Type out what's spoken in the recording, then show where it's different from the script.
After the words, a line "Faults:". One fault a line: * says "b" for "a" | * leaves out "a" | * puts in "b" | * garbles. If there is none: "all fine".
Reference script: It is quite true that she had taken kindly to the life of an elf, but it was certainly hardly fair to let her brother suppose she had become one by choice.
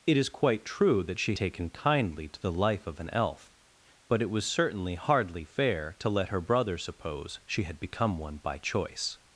It is quite true that she taken kindly to the life of an elf, but it was certainly hardly fair to let her brother suppose she had become one by choice.
Faults:
* leaves out "had"